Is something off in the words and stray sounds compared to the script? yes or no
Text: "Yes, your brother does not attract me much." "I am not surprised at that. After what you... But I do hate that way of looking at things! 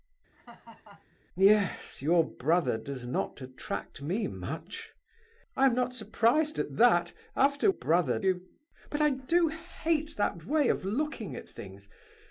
yes